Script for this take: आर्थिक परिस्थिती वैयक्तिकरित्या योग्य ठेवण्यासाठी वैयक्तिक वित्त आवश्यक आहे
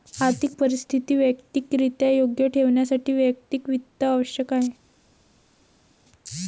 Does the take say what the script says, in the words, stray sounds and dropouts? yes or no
yes